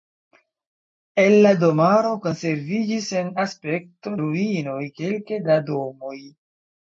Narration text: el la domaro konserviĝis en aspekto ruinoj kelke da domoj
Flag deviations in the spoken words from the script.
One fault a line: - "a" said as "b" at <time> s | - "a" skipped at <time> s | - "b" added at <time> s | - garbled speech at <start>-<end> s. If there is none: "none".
none